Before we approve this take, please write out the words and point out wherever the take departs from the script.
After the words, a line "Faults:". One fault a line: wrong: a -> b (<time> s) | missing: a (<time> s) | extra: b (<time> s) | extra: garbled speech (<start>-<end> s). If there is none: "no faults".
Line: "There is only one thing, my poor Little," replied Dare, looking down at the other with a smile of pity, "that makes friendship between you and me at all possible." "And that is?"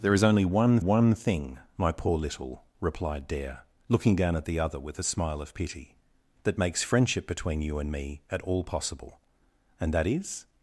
"There is only one one thing, my poor Little," replied Dare, looking down at the other with a smile of pity, "that makes friendship between you and me at all possible." "And that is?"
Faults:
extra: one (0.8 s)